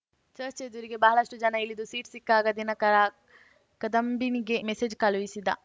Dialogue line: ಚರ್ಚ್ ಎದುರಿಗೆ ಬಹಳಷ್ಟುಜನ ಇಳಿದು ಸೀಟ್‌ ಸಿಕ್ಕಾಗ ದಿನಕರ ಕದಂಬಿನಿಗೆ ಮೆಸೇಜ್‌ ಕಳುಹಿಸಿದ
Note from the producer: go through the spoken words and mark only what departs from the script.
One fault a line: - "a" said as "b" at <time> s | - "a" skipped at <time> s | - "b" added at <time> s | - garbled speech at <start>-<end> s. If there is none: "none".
none